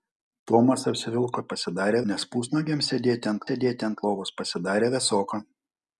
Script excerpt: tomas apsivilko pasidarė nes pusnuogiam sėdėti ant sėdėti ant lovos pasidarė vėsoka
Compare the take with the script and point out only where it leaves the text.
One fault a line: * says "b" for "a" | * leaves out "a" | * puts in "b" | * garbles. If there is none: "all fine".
all fine